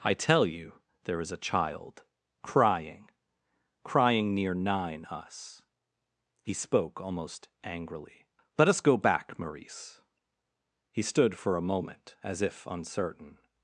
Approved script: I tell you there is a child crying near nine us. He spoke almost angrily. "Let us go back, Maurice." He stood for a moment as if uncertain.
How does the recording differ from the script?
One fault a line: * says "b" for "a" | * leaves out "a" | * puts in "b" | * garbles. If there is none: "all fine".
* puts in "crying"